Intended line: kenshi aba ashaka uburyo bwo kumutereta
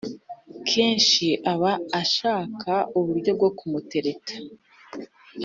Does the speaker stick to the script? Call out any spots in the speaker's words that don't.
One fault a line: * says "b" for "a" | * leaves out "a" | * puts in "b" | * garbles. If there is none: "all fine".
all fine